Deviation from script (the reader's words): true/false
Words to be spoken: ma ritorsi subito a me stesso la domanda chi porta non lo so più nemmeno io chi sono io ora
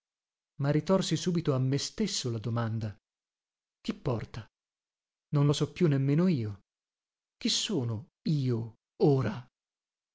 false